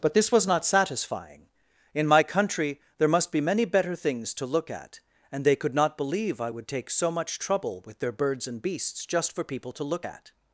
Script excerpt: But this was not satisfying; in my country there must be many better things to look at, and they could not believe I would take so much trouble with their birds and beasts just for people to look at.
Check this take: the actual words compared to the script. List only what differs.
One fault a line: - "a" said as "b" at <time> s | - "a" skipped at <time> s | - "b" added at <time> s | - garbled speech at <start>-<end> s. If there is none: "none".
none